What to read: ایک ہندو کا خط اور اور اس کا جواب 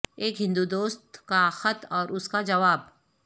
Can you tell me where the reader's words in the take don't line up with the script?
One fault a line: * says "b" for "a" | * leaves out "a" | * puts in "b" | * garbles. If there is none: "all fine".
* puts in "دوست"
* leaves out "اور"